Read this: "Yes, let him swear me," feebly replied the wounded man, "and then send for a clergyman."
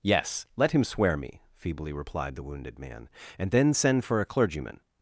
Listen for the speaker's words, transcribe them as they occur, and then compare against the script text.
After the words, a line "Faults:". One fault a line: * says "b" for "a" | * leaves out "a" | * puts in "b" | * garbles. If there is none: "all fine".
"Yes, let him swear me," feebly replied the wounded man, "and then send for a clergyman."
Faults:
all fine